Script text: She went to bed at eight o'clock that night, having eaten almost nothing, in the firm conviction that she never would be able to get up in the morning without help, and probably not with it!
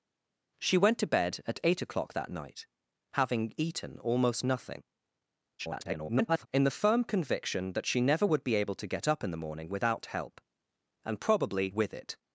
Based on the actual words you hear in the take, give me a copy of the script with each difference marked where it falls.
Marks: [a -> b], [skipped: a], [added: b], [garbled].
She went to bed at eight o'clock that night, having eaten almost nothing, [garbled] in the firm conviction that she never would be able to get up in the morning without help, and probably [skipped: not] with it!